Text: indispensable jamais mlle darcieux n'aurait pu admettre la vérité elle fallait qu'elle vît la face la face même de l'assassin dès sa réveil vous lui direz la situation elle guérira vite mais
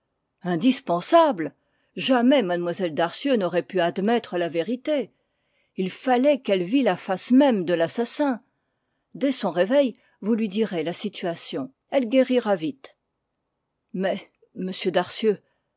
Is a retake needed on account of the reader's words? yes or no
yes